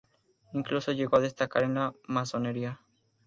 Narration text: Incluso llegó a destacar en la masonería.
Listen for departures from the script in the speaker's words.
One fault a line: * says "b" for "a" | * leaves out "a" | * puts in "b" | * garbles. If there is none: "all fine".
all fine